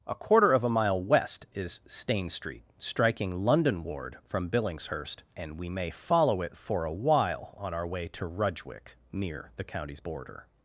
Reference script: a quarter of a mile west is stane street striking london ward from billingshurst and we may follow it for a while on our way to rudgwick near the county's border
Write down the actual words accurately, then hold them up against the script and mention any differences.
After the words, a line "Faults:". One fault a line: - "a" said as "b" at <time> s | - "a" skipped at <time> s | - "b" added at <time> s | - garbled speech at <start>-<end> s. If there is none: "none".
a quarter of a mile west is stane street striking london ward from billingshurst and we may follow it for a while on our way to rudgwick near the county's border
Faults:
none